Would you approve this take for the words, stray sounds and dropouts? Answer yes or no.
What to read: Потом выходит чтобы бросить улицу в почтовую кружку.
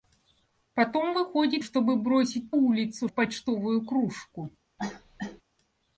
no